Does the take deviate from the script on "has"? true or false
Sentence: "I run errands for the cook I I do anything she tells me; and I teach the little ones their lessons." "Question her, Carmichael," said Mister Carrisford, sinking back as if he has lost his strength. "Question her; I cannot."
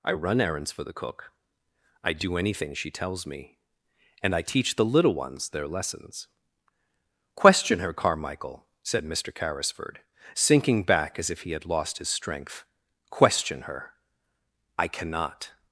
true